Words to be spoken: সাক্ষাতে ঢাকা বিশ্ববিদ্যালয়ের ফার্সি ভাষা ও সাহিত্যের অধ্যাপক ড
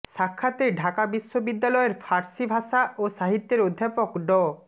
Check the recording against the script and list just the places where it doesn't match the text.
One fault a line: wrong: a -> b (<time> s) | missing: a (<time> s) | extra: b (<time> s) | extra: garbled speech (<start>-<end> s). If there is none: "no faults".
no faults